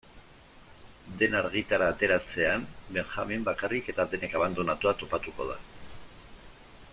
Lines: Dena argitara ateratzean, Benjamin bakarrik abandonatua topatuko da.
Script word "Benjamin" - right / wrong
right